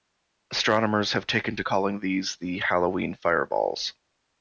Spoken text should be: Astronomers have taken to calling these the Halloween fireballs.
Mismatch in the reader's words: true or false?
false